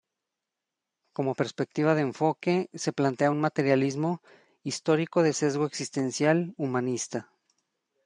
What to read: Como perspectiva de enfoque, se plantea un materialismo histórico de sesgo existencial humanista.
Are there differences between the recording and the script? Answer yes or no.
no